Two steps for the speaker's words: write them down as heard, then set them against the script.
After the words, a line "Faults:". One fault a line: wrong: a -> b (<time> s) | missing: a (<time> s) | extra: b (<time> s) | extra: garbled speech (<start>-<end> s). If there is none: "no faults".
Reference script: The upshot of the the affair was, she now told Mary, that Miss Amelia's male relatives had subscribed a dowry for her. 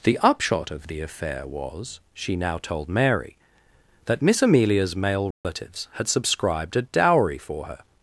The upshot of the affair was, she now told Mary, that Miss Amelia's male relatives had subscribed a dowry for her.
Faults:
missing: the (1.0 s)